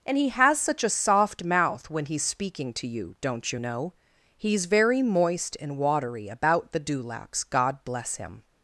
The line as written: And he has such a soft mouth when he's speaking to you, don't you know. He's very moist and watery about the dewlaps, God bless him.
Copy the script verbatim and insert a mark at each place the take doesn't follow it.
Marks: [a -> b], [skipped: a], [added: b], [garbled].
And he has such a soft mouth when he's speaking to you, don't you know. He's very moist and watery about the dewlaps, God bless him.